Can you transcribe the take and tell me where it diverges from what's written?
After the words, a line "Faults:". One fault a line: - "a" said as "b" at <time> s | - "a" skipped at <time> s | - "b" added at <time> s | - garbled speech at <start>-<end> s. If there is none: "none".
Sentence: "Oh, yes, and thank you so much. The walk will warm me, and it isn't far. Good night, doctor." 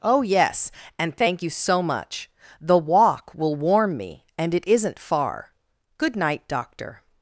"Oh, yes, and thank you so much. The walk will warm me, and it isn't far. Good night, doctor."
Faults:
none